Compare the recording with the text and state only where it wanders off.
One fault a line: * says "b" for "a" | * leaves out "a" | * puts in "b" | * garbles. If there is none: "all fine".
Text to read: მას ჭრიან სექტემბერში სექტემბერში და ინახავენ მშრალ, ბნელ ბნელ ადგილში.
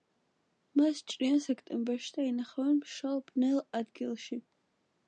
* leaves out "სექტემბერში"
* leaves out "ბნელ"